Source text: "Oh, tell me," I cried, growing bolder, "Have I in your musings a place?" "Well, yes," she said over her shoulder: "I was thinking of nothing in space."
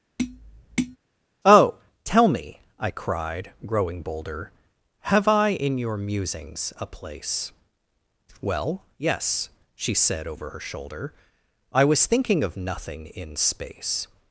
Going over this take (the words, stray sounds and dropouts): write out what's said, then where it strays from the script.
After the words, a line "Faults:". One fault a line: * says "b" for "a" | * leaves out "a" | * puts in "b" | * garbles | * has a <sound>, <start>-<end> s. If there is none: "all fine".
"Oh, tell me," I cried, growing bolder, "Have I in your musings a place?" "Well, yes," she said over her shoulder: "I was thinking of nothing in space."
Faults:
* has a tap, 0.2-1.0 s